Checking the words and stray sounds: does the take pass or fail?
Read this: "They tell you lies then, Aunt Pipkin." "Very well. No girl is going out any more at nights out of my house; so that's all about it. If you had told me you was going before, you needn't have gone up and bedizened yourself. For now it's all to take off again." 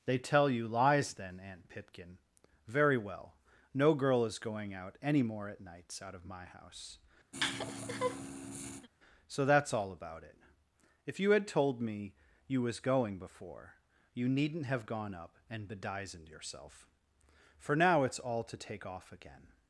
fail